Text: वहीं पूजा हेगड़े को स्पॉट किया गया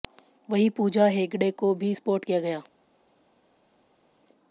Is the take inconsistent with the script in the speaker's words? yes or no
yes